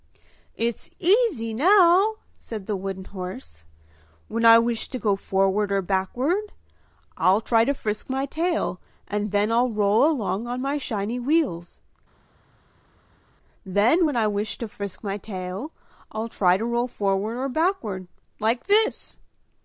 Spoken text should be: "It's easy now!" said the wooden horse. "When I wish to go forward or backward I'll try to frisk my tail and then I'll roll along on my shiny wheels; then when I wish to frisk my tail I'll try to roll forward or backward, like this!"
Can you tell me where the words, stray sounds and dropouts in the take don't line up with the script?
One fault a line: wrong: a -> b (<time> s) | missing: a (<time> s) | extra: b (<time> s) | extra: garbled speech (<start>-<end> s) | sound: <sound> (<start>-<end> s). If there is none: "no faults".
no faults